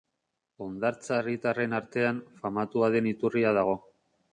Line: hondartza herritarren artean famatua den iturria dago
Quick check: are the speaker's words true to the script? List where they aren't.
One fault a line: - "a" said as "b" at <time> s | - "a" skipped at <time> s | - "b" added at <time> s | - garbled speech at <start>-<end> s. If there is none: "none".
none